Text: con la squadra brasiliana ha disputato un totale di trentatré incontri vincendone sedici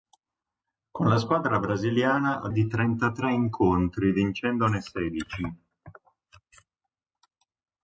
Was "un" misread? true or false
true